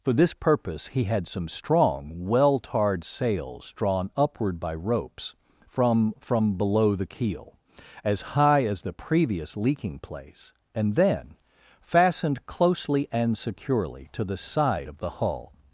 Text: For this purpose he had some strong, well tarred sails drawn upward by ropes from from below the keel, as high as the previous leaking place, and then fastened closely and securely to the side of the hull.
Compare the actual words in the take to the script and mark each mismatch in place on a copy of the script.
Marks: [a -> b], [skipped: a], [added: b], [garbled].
For this purpose he had some strong, well tarred sails drawn upward by ropes from from below the keel, as high as the previous leaking place, and then fastened closely and securely to the side of the hull.